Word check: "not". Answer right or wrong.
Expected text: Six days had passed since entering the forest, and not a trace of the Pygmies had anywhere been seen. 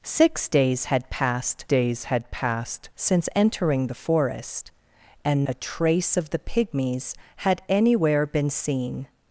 wrong